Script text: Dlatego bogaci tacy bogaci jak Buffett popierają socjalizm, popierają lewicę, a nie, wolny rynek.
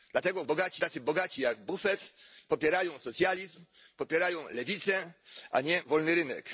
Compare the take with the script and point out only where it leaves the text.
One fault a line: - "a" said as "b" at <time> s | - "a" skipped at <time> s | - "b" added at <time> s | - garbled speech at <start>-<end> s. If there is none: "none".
none